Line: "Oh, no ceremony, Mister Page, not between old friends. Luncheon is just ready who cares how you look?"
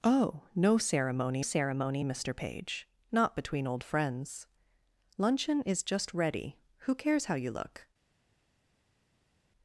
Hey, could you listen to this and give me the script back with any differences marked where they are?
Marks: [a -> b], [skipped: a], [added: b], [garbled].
"Oh, no ceremony, [added: ceremony] Mister Page, not between old friends. Luncheon is just ready who cares how you look?"